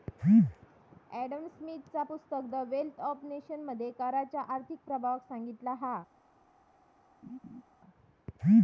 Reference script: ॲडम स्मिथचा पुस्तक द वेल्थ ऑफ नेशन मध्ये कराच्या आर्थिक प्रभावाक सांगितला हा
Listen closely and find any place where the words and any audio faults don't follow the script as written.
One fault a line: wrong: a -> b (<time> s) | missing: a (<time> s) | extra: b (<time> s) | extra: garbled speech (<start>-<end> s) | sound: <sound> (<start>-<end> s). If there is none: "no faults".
sound: laugh (7.2-7.6 s)